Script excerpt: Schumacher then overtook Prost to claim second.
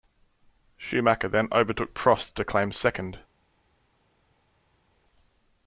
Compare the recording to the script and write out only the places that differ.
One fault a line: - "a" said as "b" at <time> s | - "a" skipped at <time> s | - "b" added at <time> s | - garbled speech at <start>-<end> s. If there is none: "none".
none